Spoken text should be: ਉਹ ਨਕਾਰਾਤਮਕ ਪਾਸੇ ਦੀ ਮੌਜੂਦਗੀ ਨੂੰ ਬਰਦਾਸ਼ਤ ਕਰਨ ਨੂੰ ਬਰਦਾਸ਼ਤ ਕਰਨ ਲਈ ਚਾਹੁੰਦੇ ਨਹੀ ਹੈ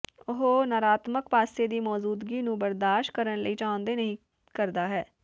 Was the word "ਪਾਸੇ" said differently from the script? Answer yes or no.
no